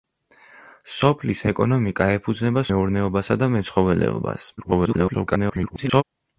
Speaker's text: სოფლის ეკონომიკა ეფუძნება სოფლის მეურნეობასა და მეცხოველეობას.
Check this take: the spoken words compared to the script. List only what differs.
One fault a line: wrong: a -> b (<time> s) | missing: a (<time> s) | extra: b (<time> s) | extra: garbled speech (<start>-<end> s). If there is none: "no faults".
missing: სოფლის (2.6 s)
extra: garbled speech (4.6-6.0 s)